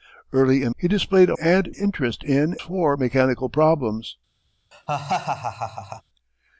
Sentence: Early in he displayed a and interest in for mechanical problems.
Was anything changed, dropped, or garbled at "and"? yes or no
no